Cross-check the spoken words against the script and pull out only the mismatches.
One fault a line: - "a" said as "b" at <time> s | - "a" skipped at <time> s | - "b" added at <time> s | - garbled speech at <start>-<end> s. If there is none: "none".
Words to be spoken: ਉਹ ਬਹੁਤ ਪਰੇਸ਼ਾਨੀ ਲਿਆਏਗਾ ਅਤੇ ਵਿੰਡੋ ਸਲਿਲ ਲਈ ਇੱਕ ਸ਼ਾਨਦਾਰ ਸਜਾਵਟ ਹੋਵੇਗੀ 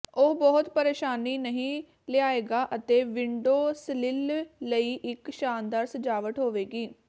- "ਨਹੀਂ" added at 1.4 s